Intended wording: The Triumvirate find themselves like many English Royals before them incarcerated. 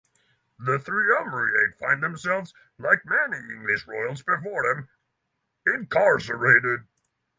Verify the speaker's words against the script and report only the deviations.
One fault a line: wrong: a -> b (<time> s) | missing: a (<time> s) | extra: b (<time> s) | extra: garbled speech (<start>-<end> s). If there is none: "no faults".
no faults